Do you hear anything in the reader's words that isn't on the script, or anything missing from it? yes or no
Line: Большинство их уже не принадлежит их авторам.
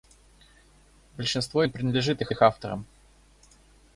yes